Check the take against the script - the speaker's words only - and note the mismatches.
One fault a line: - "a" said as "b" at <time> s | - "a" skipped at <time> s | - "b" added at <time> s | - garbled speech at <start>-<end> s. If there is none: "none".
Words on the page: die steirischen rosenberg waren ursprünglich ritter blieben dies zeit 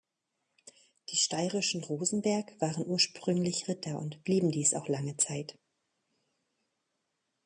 - "und" added at 4.0 s
- "auch lange" added at 4.7 s